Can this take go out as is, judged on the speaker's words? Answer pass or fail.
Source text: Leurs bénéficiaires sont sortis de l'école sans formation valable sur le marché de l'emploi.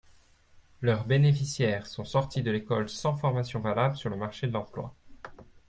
pass